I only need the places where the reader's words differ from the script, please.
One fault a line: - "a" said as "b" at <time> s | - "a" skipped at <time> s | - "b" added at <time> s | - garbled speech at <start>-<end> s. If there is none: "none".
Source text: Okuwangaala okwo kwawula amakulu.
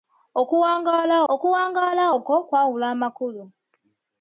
- "okuwangaala" added at 1.3 s